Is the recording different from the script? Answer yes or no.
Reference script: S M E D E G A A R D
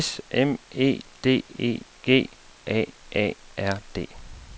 no